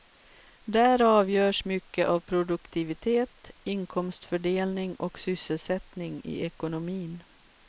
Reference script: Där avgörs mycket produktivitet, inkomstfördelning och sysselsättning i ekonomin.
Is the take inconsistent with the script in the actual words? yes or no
yes